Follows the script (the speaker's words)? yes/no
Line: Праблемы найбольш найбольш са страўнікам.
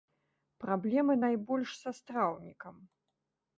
no